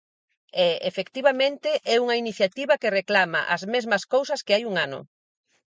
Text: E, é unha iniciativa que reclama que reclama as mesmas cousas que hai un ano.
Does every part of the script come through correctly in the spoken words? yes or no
no